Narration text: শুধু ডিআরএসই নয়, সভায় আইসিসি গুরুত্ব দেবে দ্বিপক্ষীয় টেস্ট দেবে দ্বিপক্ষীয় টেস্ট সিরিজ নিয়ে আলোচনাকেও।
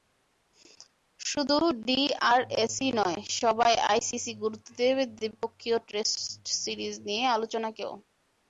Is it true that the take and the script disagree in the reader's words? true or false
true